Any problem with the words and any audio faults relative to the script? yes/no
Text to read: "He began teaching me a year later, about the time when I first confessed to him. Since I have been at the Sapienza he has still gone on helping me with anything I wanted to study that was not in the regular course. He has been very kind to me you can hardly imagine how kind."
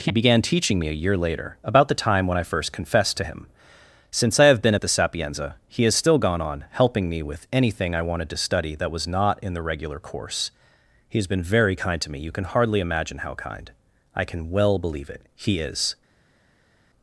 yes